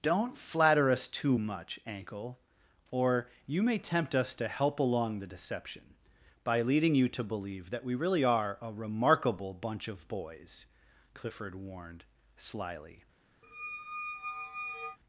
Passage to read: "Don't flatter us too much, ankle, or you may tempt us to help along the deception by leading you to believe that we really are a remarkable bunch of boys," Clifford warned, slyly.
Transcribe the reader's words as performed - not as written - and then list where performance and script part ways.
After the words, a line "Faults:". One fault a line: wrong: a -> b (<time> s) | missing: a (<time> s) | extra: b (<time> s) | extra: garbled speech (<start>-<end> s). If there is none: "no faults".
"Don't flatter us too much, ankle, or you may tempt us to help along the deception by leading you to believe that we really are a remarkable bunch of boys," Clifford warned, slyly.
Faults:
no faults